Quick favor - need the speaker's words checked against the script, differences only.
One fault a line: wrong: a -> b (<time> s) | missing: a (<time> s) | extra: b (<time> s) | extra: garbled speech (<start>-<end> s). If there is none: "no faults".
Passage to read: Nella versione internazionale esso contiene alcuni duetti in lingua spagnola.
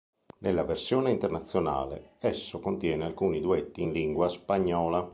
no faults